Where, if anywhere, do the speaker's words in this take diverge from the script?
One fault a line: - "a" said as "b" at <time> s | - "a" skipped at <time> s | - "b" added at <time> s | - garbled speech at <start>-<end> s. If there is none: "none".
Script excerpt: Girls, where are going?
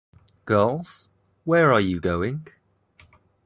- "you" added at 1.8 s